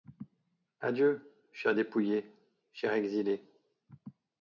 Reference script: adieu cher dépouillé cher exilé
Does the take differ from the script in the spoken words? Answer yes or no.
no